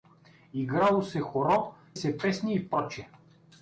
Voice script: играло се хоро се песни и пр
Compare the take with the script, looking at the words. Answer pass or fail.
pass